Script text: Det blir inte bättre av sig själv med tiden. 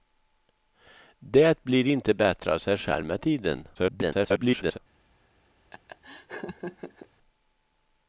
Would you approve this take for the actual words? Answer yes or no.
no